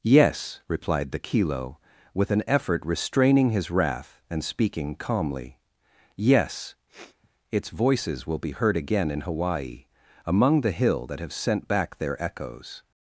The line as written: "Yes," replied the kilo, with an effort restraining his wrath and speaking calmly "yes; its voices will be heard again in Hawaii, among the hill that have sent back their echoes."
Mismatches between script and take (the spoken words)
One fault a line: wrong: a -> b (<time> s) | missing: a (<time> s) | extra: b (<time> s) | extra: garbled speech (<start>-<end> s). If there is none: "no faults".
no faults